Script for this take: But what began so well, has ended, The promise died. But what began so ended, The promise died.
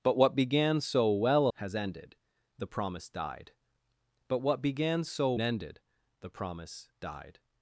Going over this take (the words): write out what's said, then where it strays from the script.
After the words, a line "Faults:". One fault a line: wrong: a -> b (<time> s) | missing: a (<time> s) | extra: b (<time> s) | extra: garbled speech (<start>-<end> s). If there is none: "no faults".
But what began so well, has ended, The promise died. But what began so ended, The promise died.
Faults:
no faults